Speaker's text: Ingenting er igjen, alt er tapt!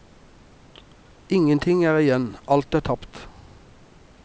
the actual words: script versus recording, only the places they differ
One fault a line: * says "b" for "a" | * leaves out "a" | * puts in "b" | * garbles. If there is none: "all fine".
all fine